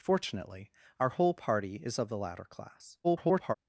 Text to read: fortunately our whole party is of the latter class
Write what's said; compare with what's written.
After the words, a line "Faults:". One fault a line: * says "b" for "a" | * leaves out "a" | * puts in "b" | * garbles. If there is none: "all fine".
fortunately our whole party is of the latter class [garbled]
Faults:
* garbles